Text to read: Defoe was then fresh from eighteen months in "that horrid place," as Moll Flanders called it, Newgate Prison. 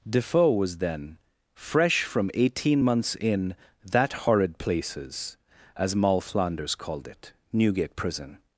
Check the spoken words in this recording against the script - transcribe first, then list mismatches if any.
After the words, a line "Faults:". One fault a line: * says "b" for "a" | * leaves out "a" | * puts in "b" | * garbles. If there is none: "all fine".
Defoe was then fresh from eighteen months in "that horrid places," as Moll Flanders called it, Newgate Prison.
Faults:
* says "places" for "place"